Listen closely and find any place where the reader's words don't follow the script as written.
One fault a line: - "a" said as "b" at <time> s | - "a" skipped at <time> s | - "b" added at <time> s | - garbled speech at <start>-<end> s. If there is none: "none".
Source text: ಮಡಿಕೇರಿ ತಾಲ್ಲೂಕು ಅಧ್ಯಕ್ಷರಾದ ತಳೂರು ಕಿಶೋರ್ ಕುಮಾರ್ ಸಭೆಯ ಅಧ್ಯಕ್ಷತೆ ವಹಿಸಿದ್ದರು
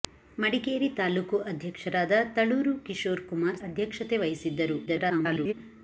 - "ಸಭೆಯ" skipped at 3.6 s
- garbled speech at 4.9-5.5 s